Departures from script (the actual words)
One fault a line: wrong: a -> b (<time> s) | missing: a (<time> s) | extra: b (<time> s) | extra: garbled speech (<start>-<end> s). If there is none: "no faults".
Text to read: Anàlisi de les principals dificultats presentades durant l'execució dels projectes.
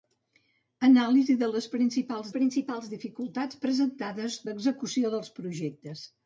extra: principals (2.3 s)
missing: durant (4.4 s)